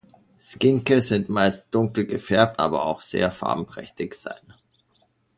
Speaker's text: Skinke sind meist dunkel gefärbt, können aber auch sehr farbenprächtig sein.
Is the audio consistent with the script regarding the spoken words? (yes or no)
no